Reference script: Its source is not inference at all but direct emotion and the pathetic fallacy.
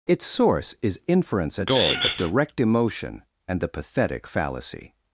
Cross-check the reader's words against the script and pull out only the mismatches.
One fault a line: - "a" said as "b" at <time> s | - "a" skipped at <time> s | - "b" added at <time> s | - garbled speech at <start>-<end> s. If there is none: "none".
- "not" skipped at 1.0 s